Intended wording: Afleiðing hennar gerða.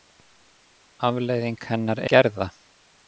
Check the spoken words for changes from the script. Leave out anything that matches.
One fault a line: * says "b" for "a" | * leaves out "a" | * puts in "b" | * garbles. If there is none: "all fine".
all fine